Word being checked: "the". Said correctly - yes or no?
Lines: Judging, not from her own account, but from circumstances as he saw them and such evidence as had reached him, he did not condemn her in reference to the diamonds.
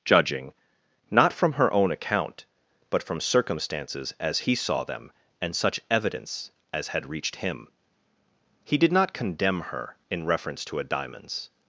no